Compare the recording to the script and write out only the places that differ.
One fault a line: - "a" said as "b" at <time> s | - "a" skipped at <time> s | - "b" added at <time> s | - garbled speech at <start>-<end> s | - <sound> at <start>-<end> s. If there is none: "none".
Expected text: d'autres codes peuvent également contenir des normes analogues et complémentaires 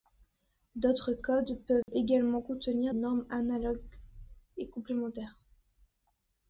- dropout at 1.8-1.9 s
- "des" skipped at 2.9 s